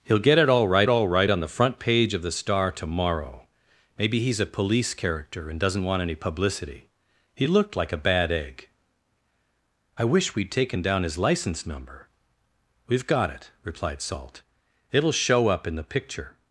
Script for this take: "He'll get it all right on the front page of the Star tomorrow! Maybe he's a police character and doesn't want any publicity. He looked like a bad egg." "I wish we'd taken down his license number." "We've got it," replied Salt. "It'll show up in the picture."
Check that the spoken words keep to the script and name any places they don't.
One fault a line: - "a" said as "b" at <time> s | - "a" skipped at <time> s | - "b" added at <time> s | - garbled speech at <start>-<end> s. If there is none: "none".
- "all right" added at 0.9 s